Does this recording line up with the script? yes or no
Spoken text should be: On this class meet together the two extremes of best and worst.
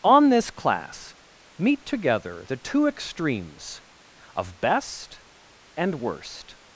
yes